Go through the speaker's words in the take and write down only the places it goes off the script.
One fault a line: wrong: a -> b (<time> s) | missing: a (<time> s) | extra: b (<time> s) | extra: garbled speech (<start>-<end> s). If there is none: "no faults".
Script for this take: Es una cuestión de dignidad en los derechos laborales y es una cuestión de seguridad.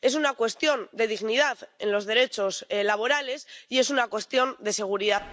no faults